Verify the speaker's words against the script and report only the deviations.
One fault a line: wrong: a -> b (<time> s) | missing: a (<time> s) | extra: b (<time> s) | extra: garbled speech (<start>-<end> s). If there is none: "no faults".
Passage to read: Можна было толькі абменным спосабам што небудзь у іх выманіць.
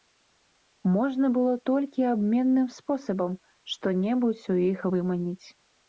no faults